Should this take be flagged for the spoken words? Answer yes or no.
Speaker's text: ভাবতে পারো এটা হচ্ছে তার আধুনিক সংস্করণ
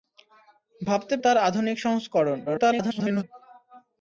yes